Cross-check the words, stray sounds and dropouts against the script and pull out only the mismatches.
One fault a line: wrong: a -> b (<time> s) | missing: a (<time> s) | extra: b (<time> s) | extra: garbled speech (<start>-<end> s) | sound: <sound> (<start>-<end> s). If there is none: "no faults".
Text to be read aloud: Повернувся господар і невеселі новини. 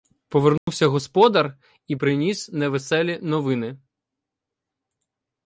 sound: dropout (0.6-0.7 s)
extra: приніс (1.9 s)